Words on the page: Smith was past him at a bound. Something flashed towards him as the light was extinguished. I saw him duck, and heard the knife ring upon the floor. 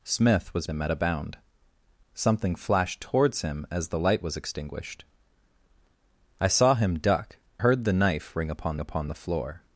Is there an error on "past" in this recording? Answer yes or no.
yes